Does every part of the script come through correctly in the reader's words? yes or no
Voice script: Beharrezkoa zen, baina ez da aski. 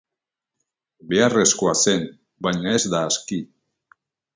yes